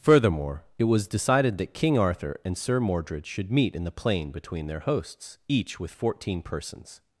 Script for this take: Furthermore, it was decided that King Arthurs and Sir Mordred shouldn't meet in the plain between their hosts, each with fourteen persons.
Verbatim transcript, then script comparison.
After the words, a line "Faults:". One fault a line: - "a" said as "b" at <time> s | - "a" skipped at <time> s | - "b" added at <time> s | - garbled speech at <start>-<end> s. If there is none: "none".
Furthermore, it was decided that King Arthur and Sir Mordred should meet in the plain between their hosts, each with fourteen persons.
Faults:
- "Arthurs" said as "Arthur" at 1.9 s
- "shouldn't" said as "should" at 3.3 s